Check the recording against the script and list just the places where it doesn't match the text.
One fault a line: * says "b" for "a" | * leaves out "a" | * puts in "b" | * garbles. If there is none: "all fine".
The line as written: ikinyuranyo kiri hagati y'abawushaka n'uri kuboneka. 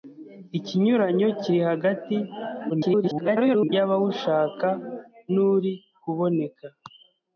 * garbles